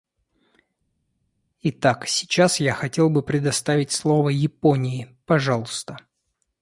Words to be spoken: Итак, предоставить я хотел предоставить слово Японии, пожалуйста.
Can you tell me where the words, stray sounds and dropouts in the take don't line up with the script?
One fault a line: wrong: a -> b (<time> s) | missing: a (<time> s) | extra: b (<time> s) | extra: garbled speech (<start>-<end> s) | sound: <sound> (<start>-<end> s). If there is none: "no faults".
wrong: предоставить -> сейчас (2.1 s)
extra: бы (3.1 s)